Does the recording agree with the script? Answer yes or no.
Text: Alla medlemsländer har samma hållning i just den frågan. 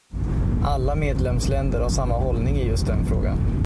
yes